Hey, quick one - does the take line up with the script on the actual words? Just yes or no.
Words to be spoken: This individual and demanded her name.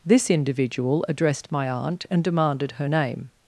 no